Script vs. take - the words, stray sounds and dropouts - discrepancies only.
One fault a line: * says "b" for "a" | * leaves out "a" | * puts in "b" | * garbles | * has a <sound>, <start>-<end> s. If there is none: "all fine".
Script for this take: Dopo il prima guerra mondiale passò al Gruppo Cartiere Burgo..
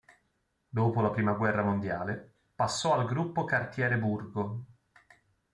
* says "la" for "il"